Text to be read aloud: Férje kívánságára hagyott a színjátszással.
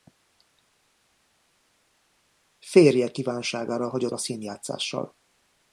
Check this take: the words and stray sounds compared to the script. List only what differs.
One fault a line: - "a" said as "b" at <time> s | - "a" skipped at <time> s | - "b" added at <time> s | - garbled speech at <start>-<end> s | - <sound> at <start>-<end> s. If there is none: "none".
none